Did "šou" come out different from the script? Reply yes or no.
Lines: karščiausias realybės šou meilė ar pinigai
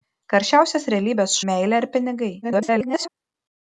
yes